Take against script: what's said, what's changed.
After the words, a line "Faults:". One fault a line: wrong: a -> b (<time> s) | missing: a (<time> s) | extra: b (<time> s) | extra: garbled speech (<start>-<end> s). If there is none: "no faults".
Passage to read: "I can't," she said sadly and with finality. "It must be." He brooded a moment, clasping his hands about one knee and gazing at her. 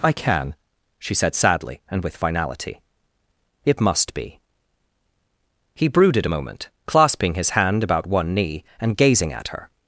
"I can," she said sadly and with finality. "It must be." He brooded a moment, clasping his hand about one knee and gazing at her.
Faults:
wrong: can't -> can (0.1 s)
wrong: hands -> hand (7.5 s)